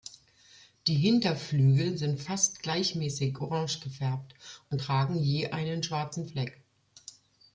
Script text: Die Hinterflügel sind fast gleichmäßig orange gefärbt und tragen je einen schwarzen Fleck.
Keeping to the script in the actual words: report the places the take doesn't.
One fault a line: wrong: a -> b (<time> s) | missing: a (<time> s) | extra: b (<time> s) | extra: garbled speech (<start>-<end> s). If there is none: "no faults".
no faults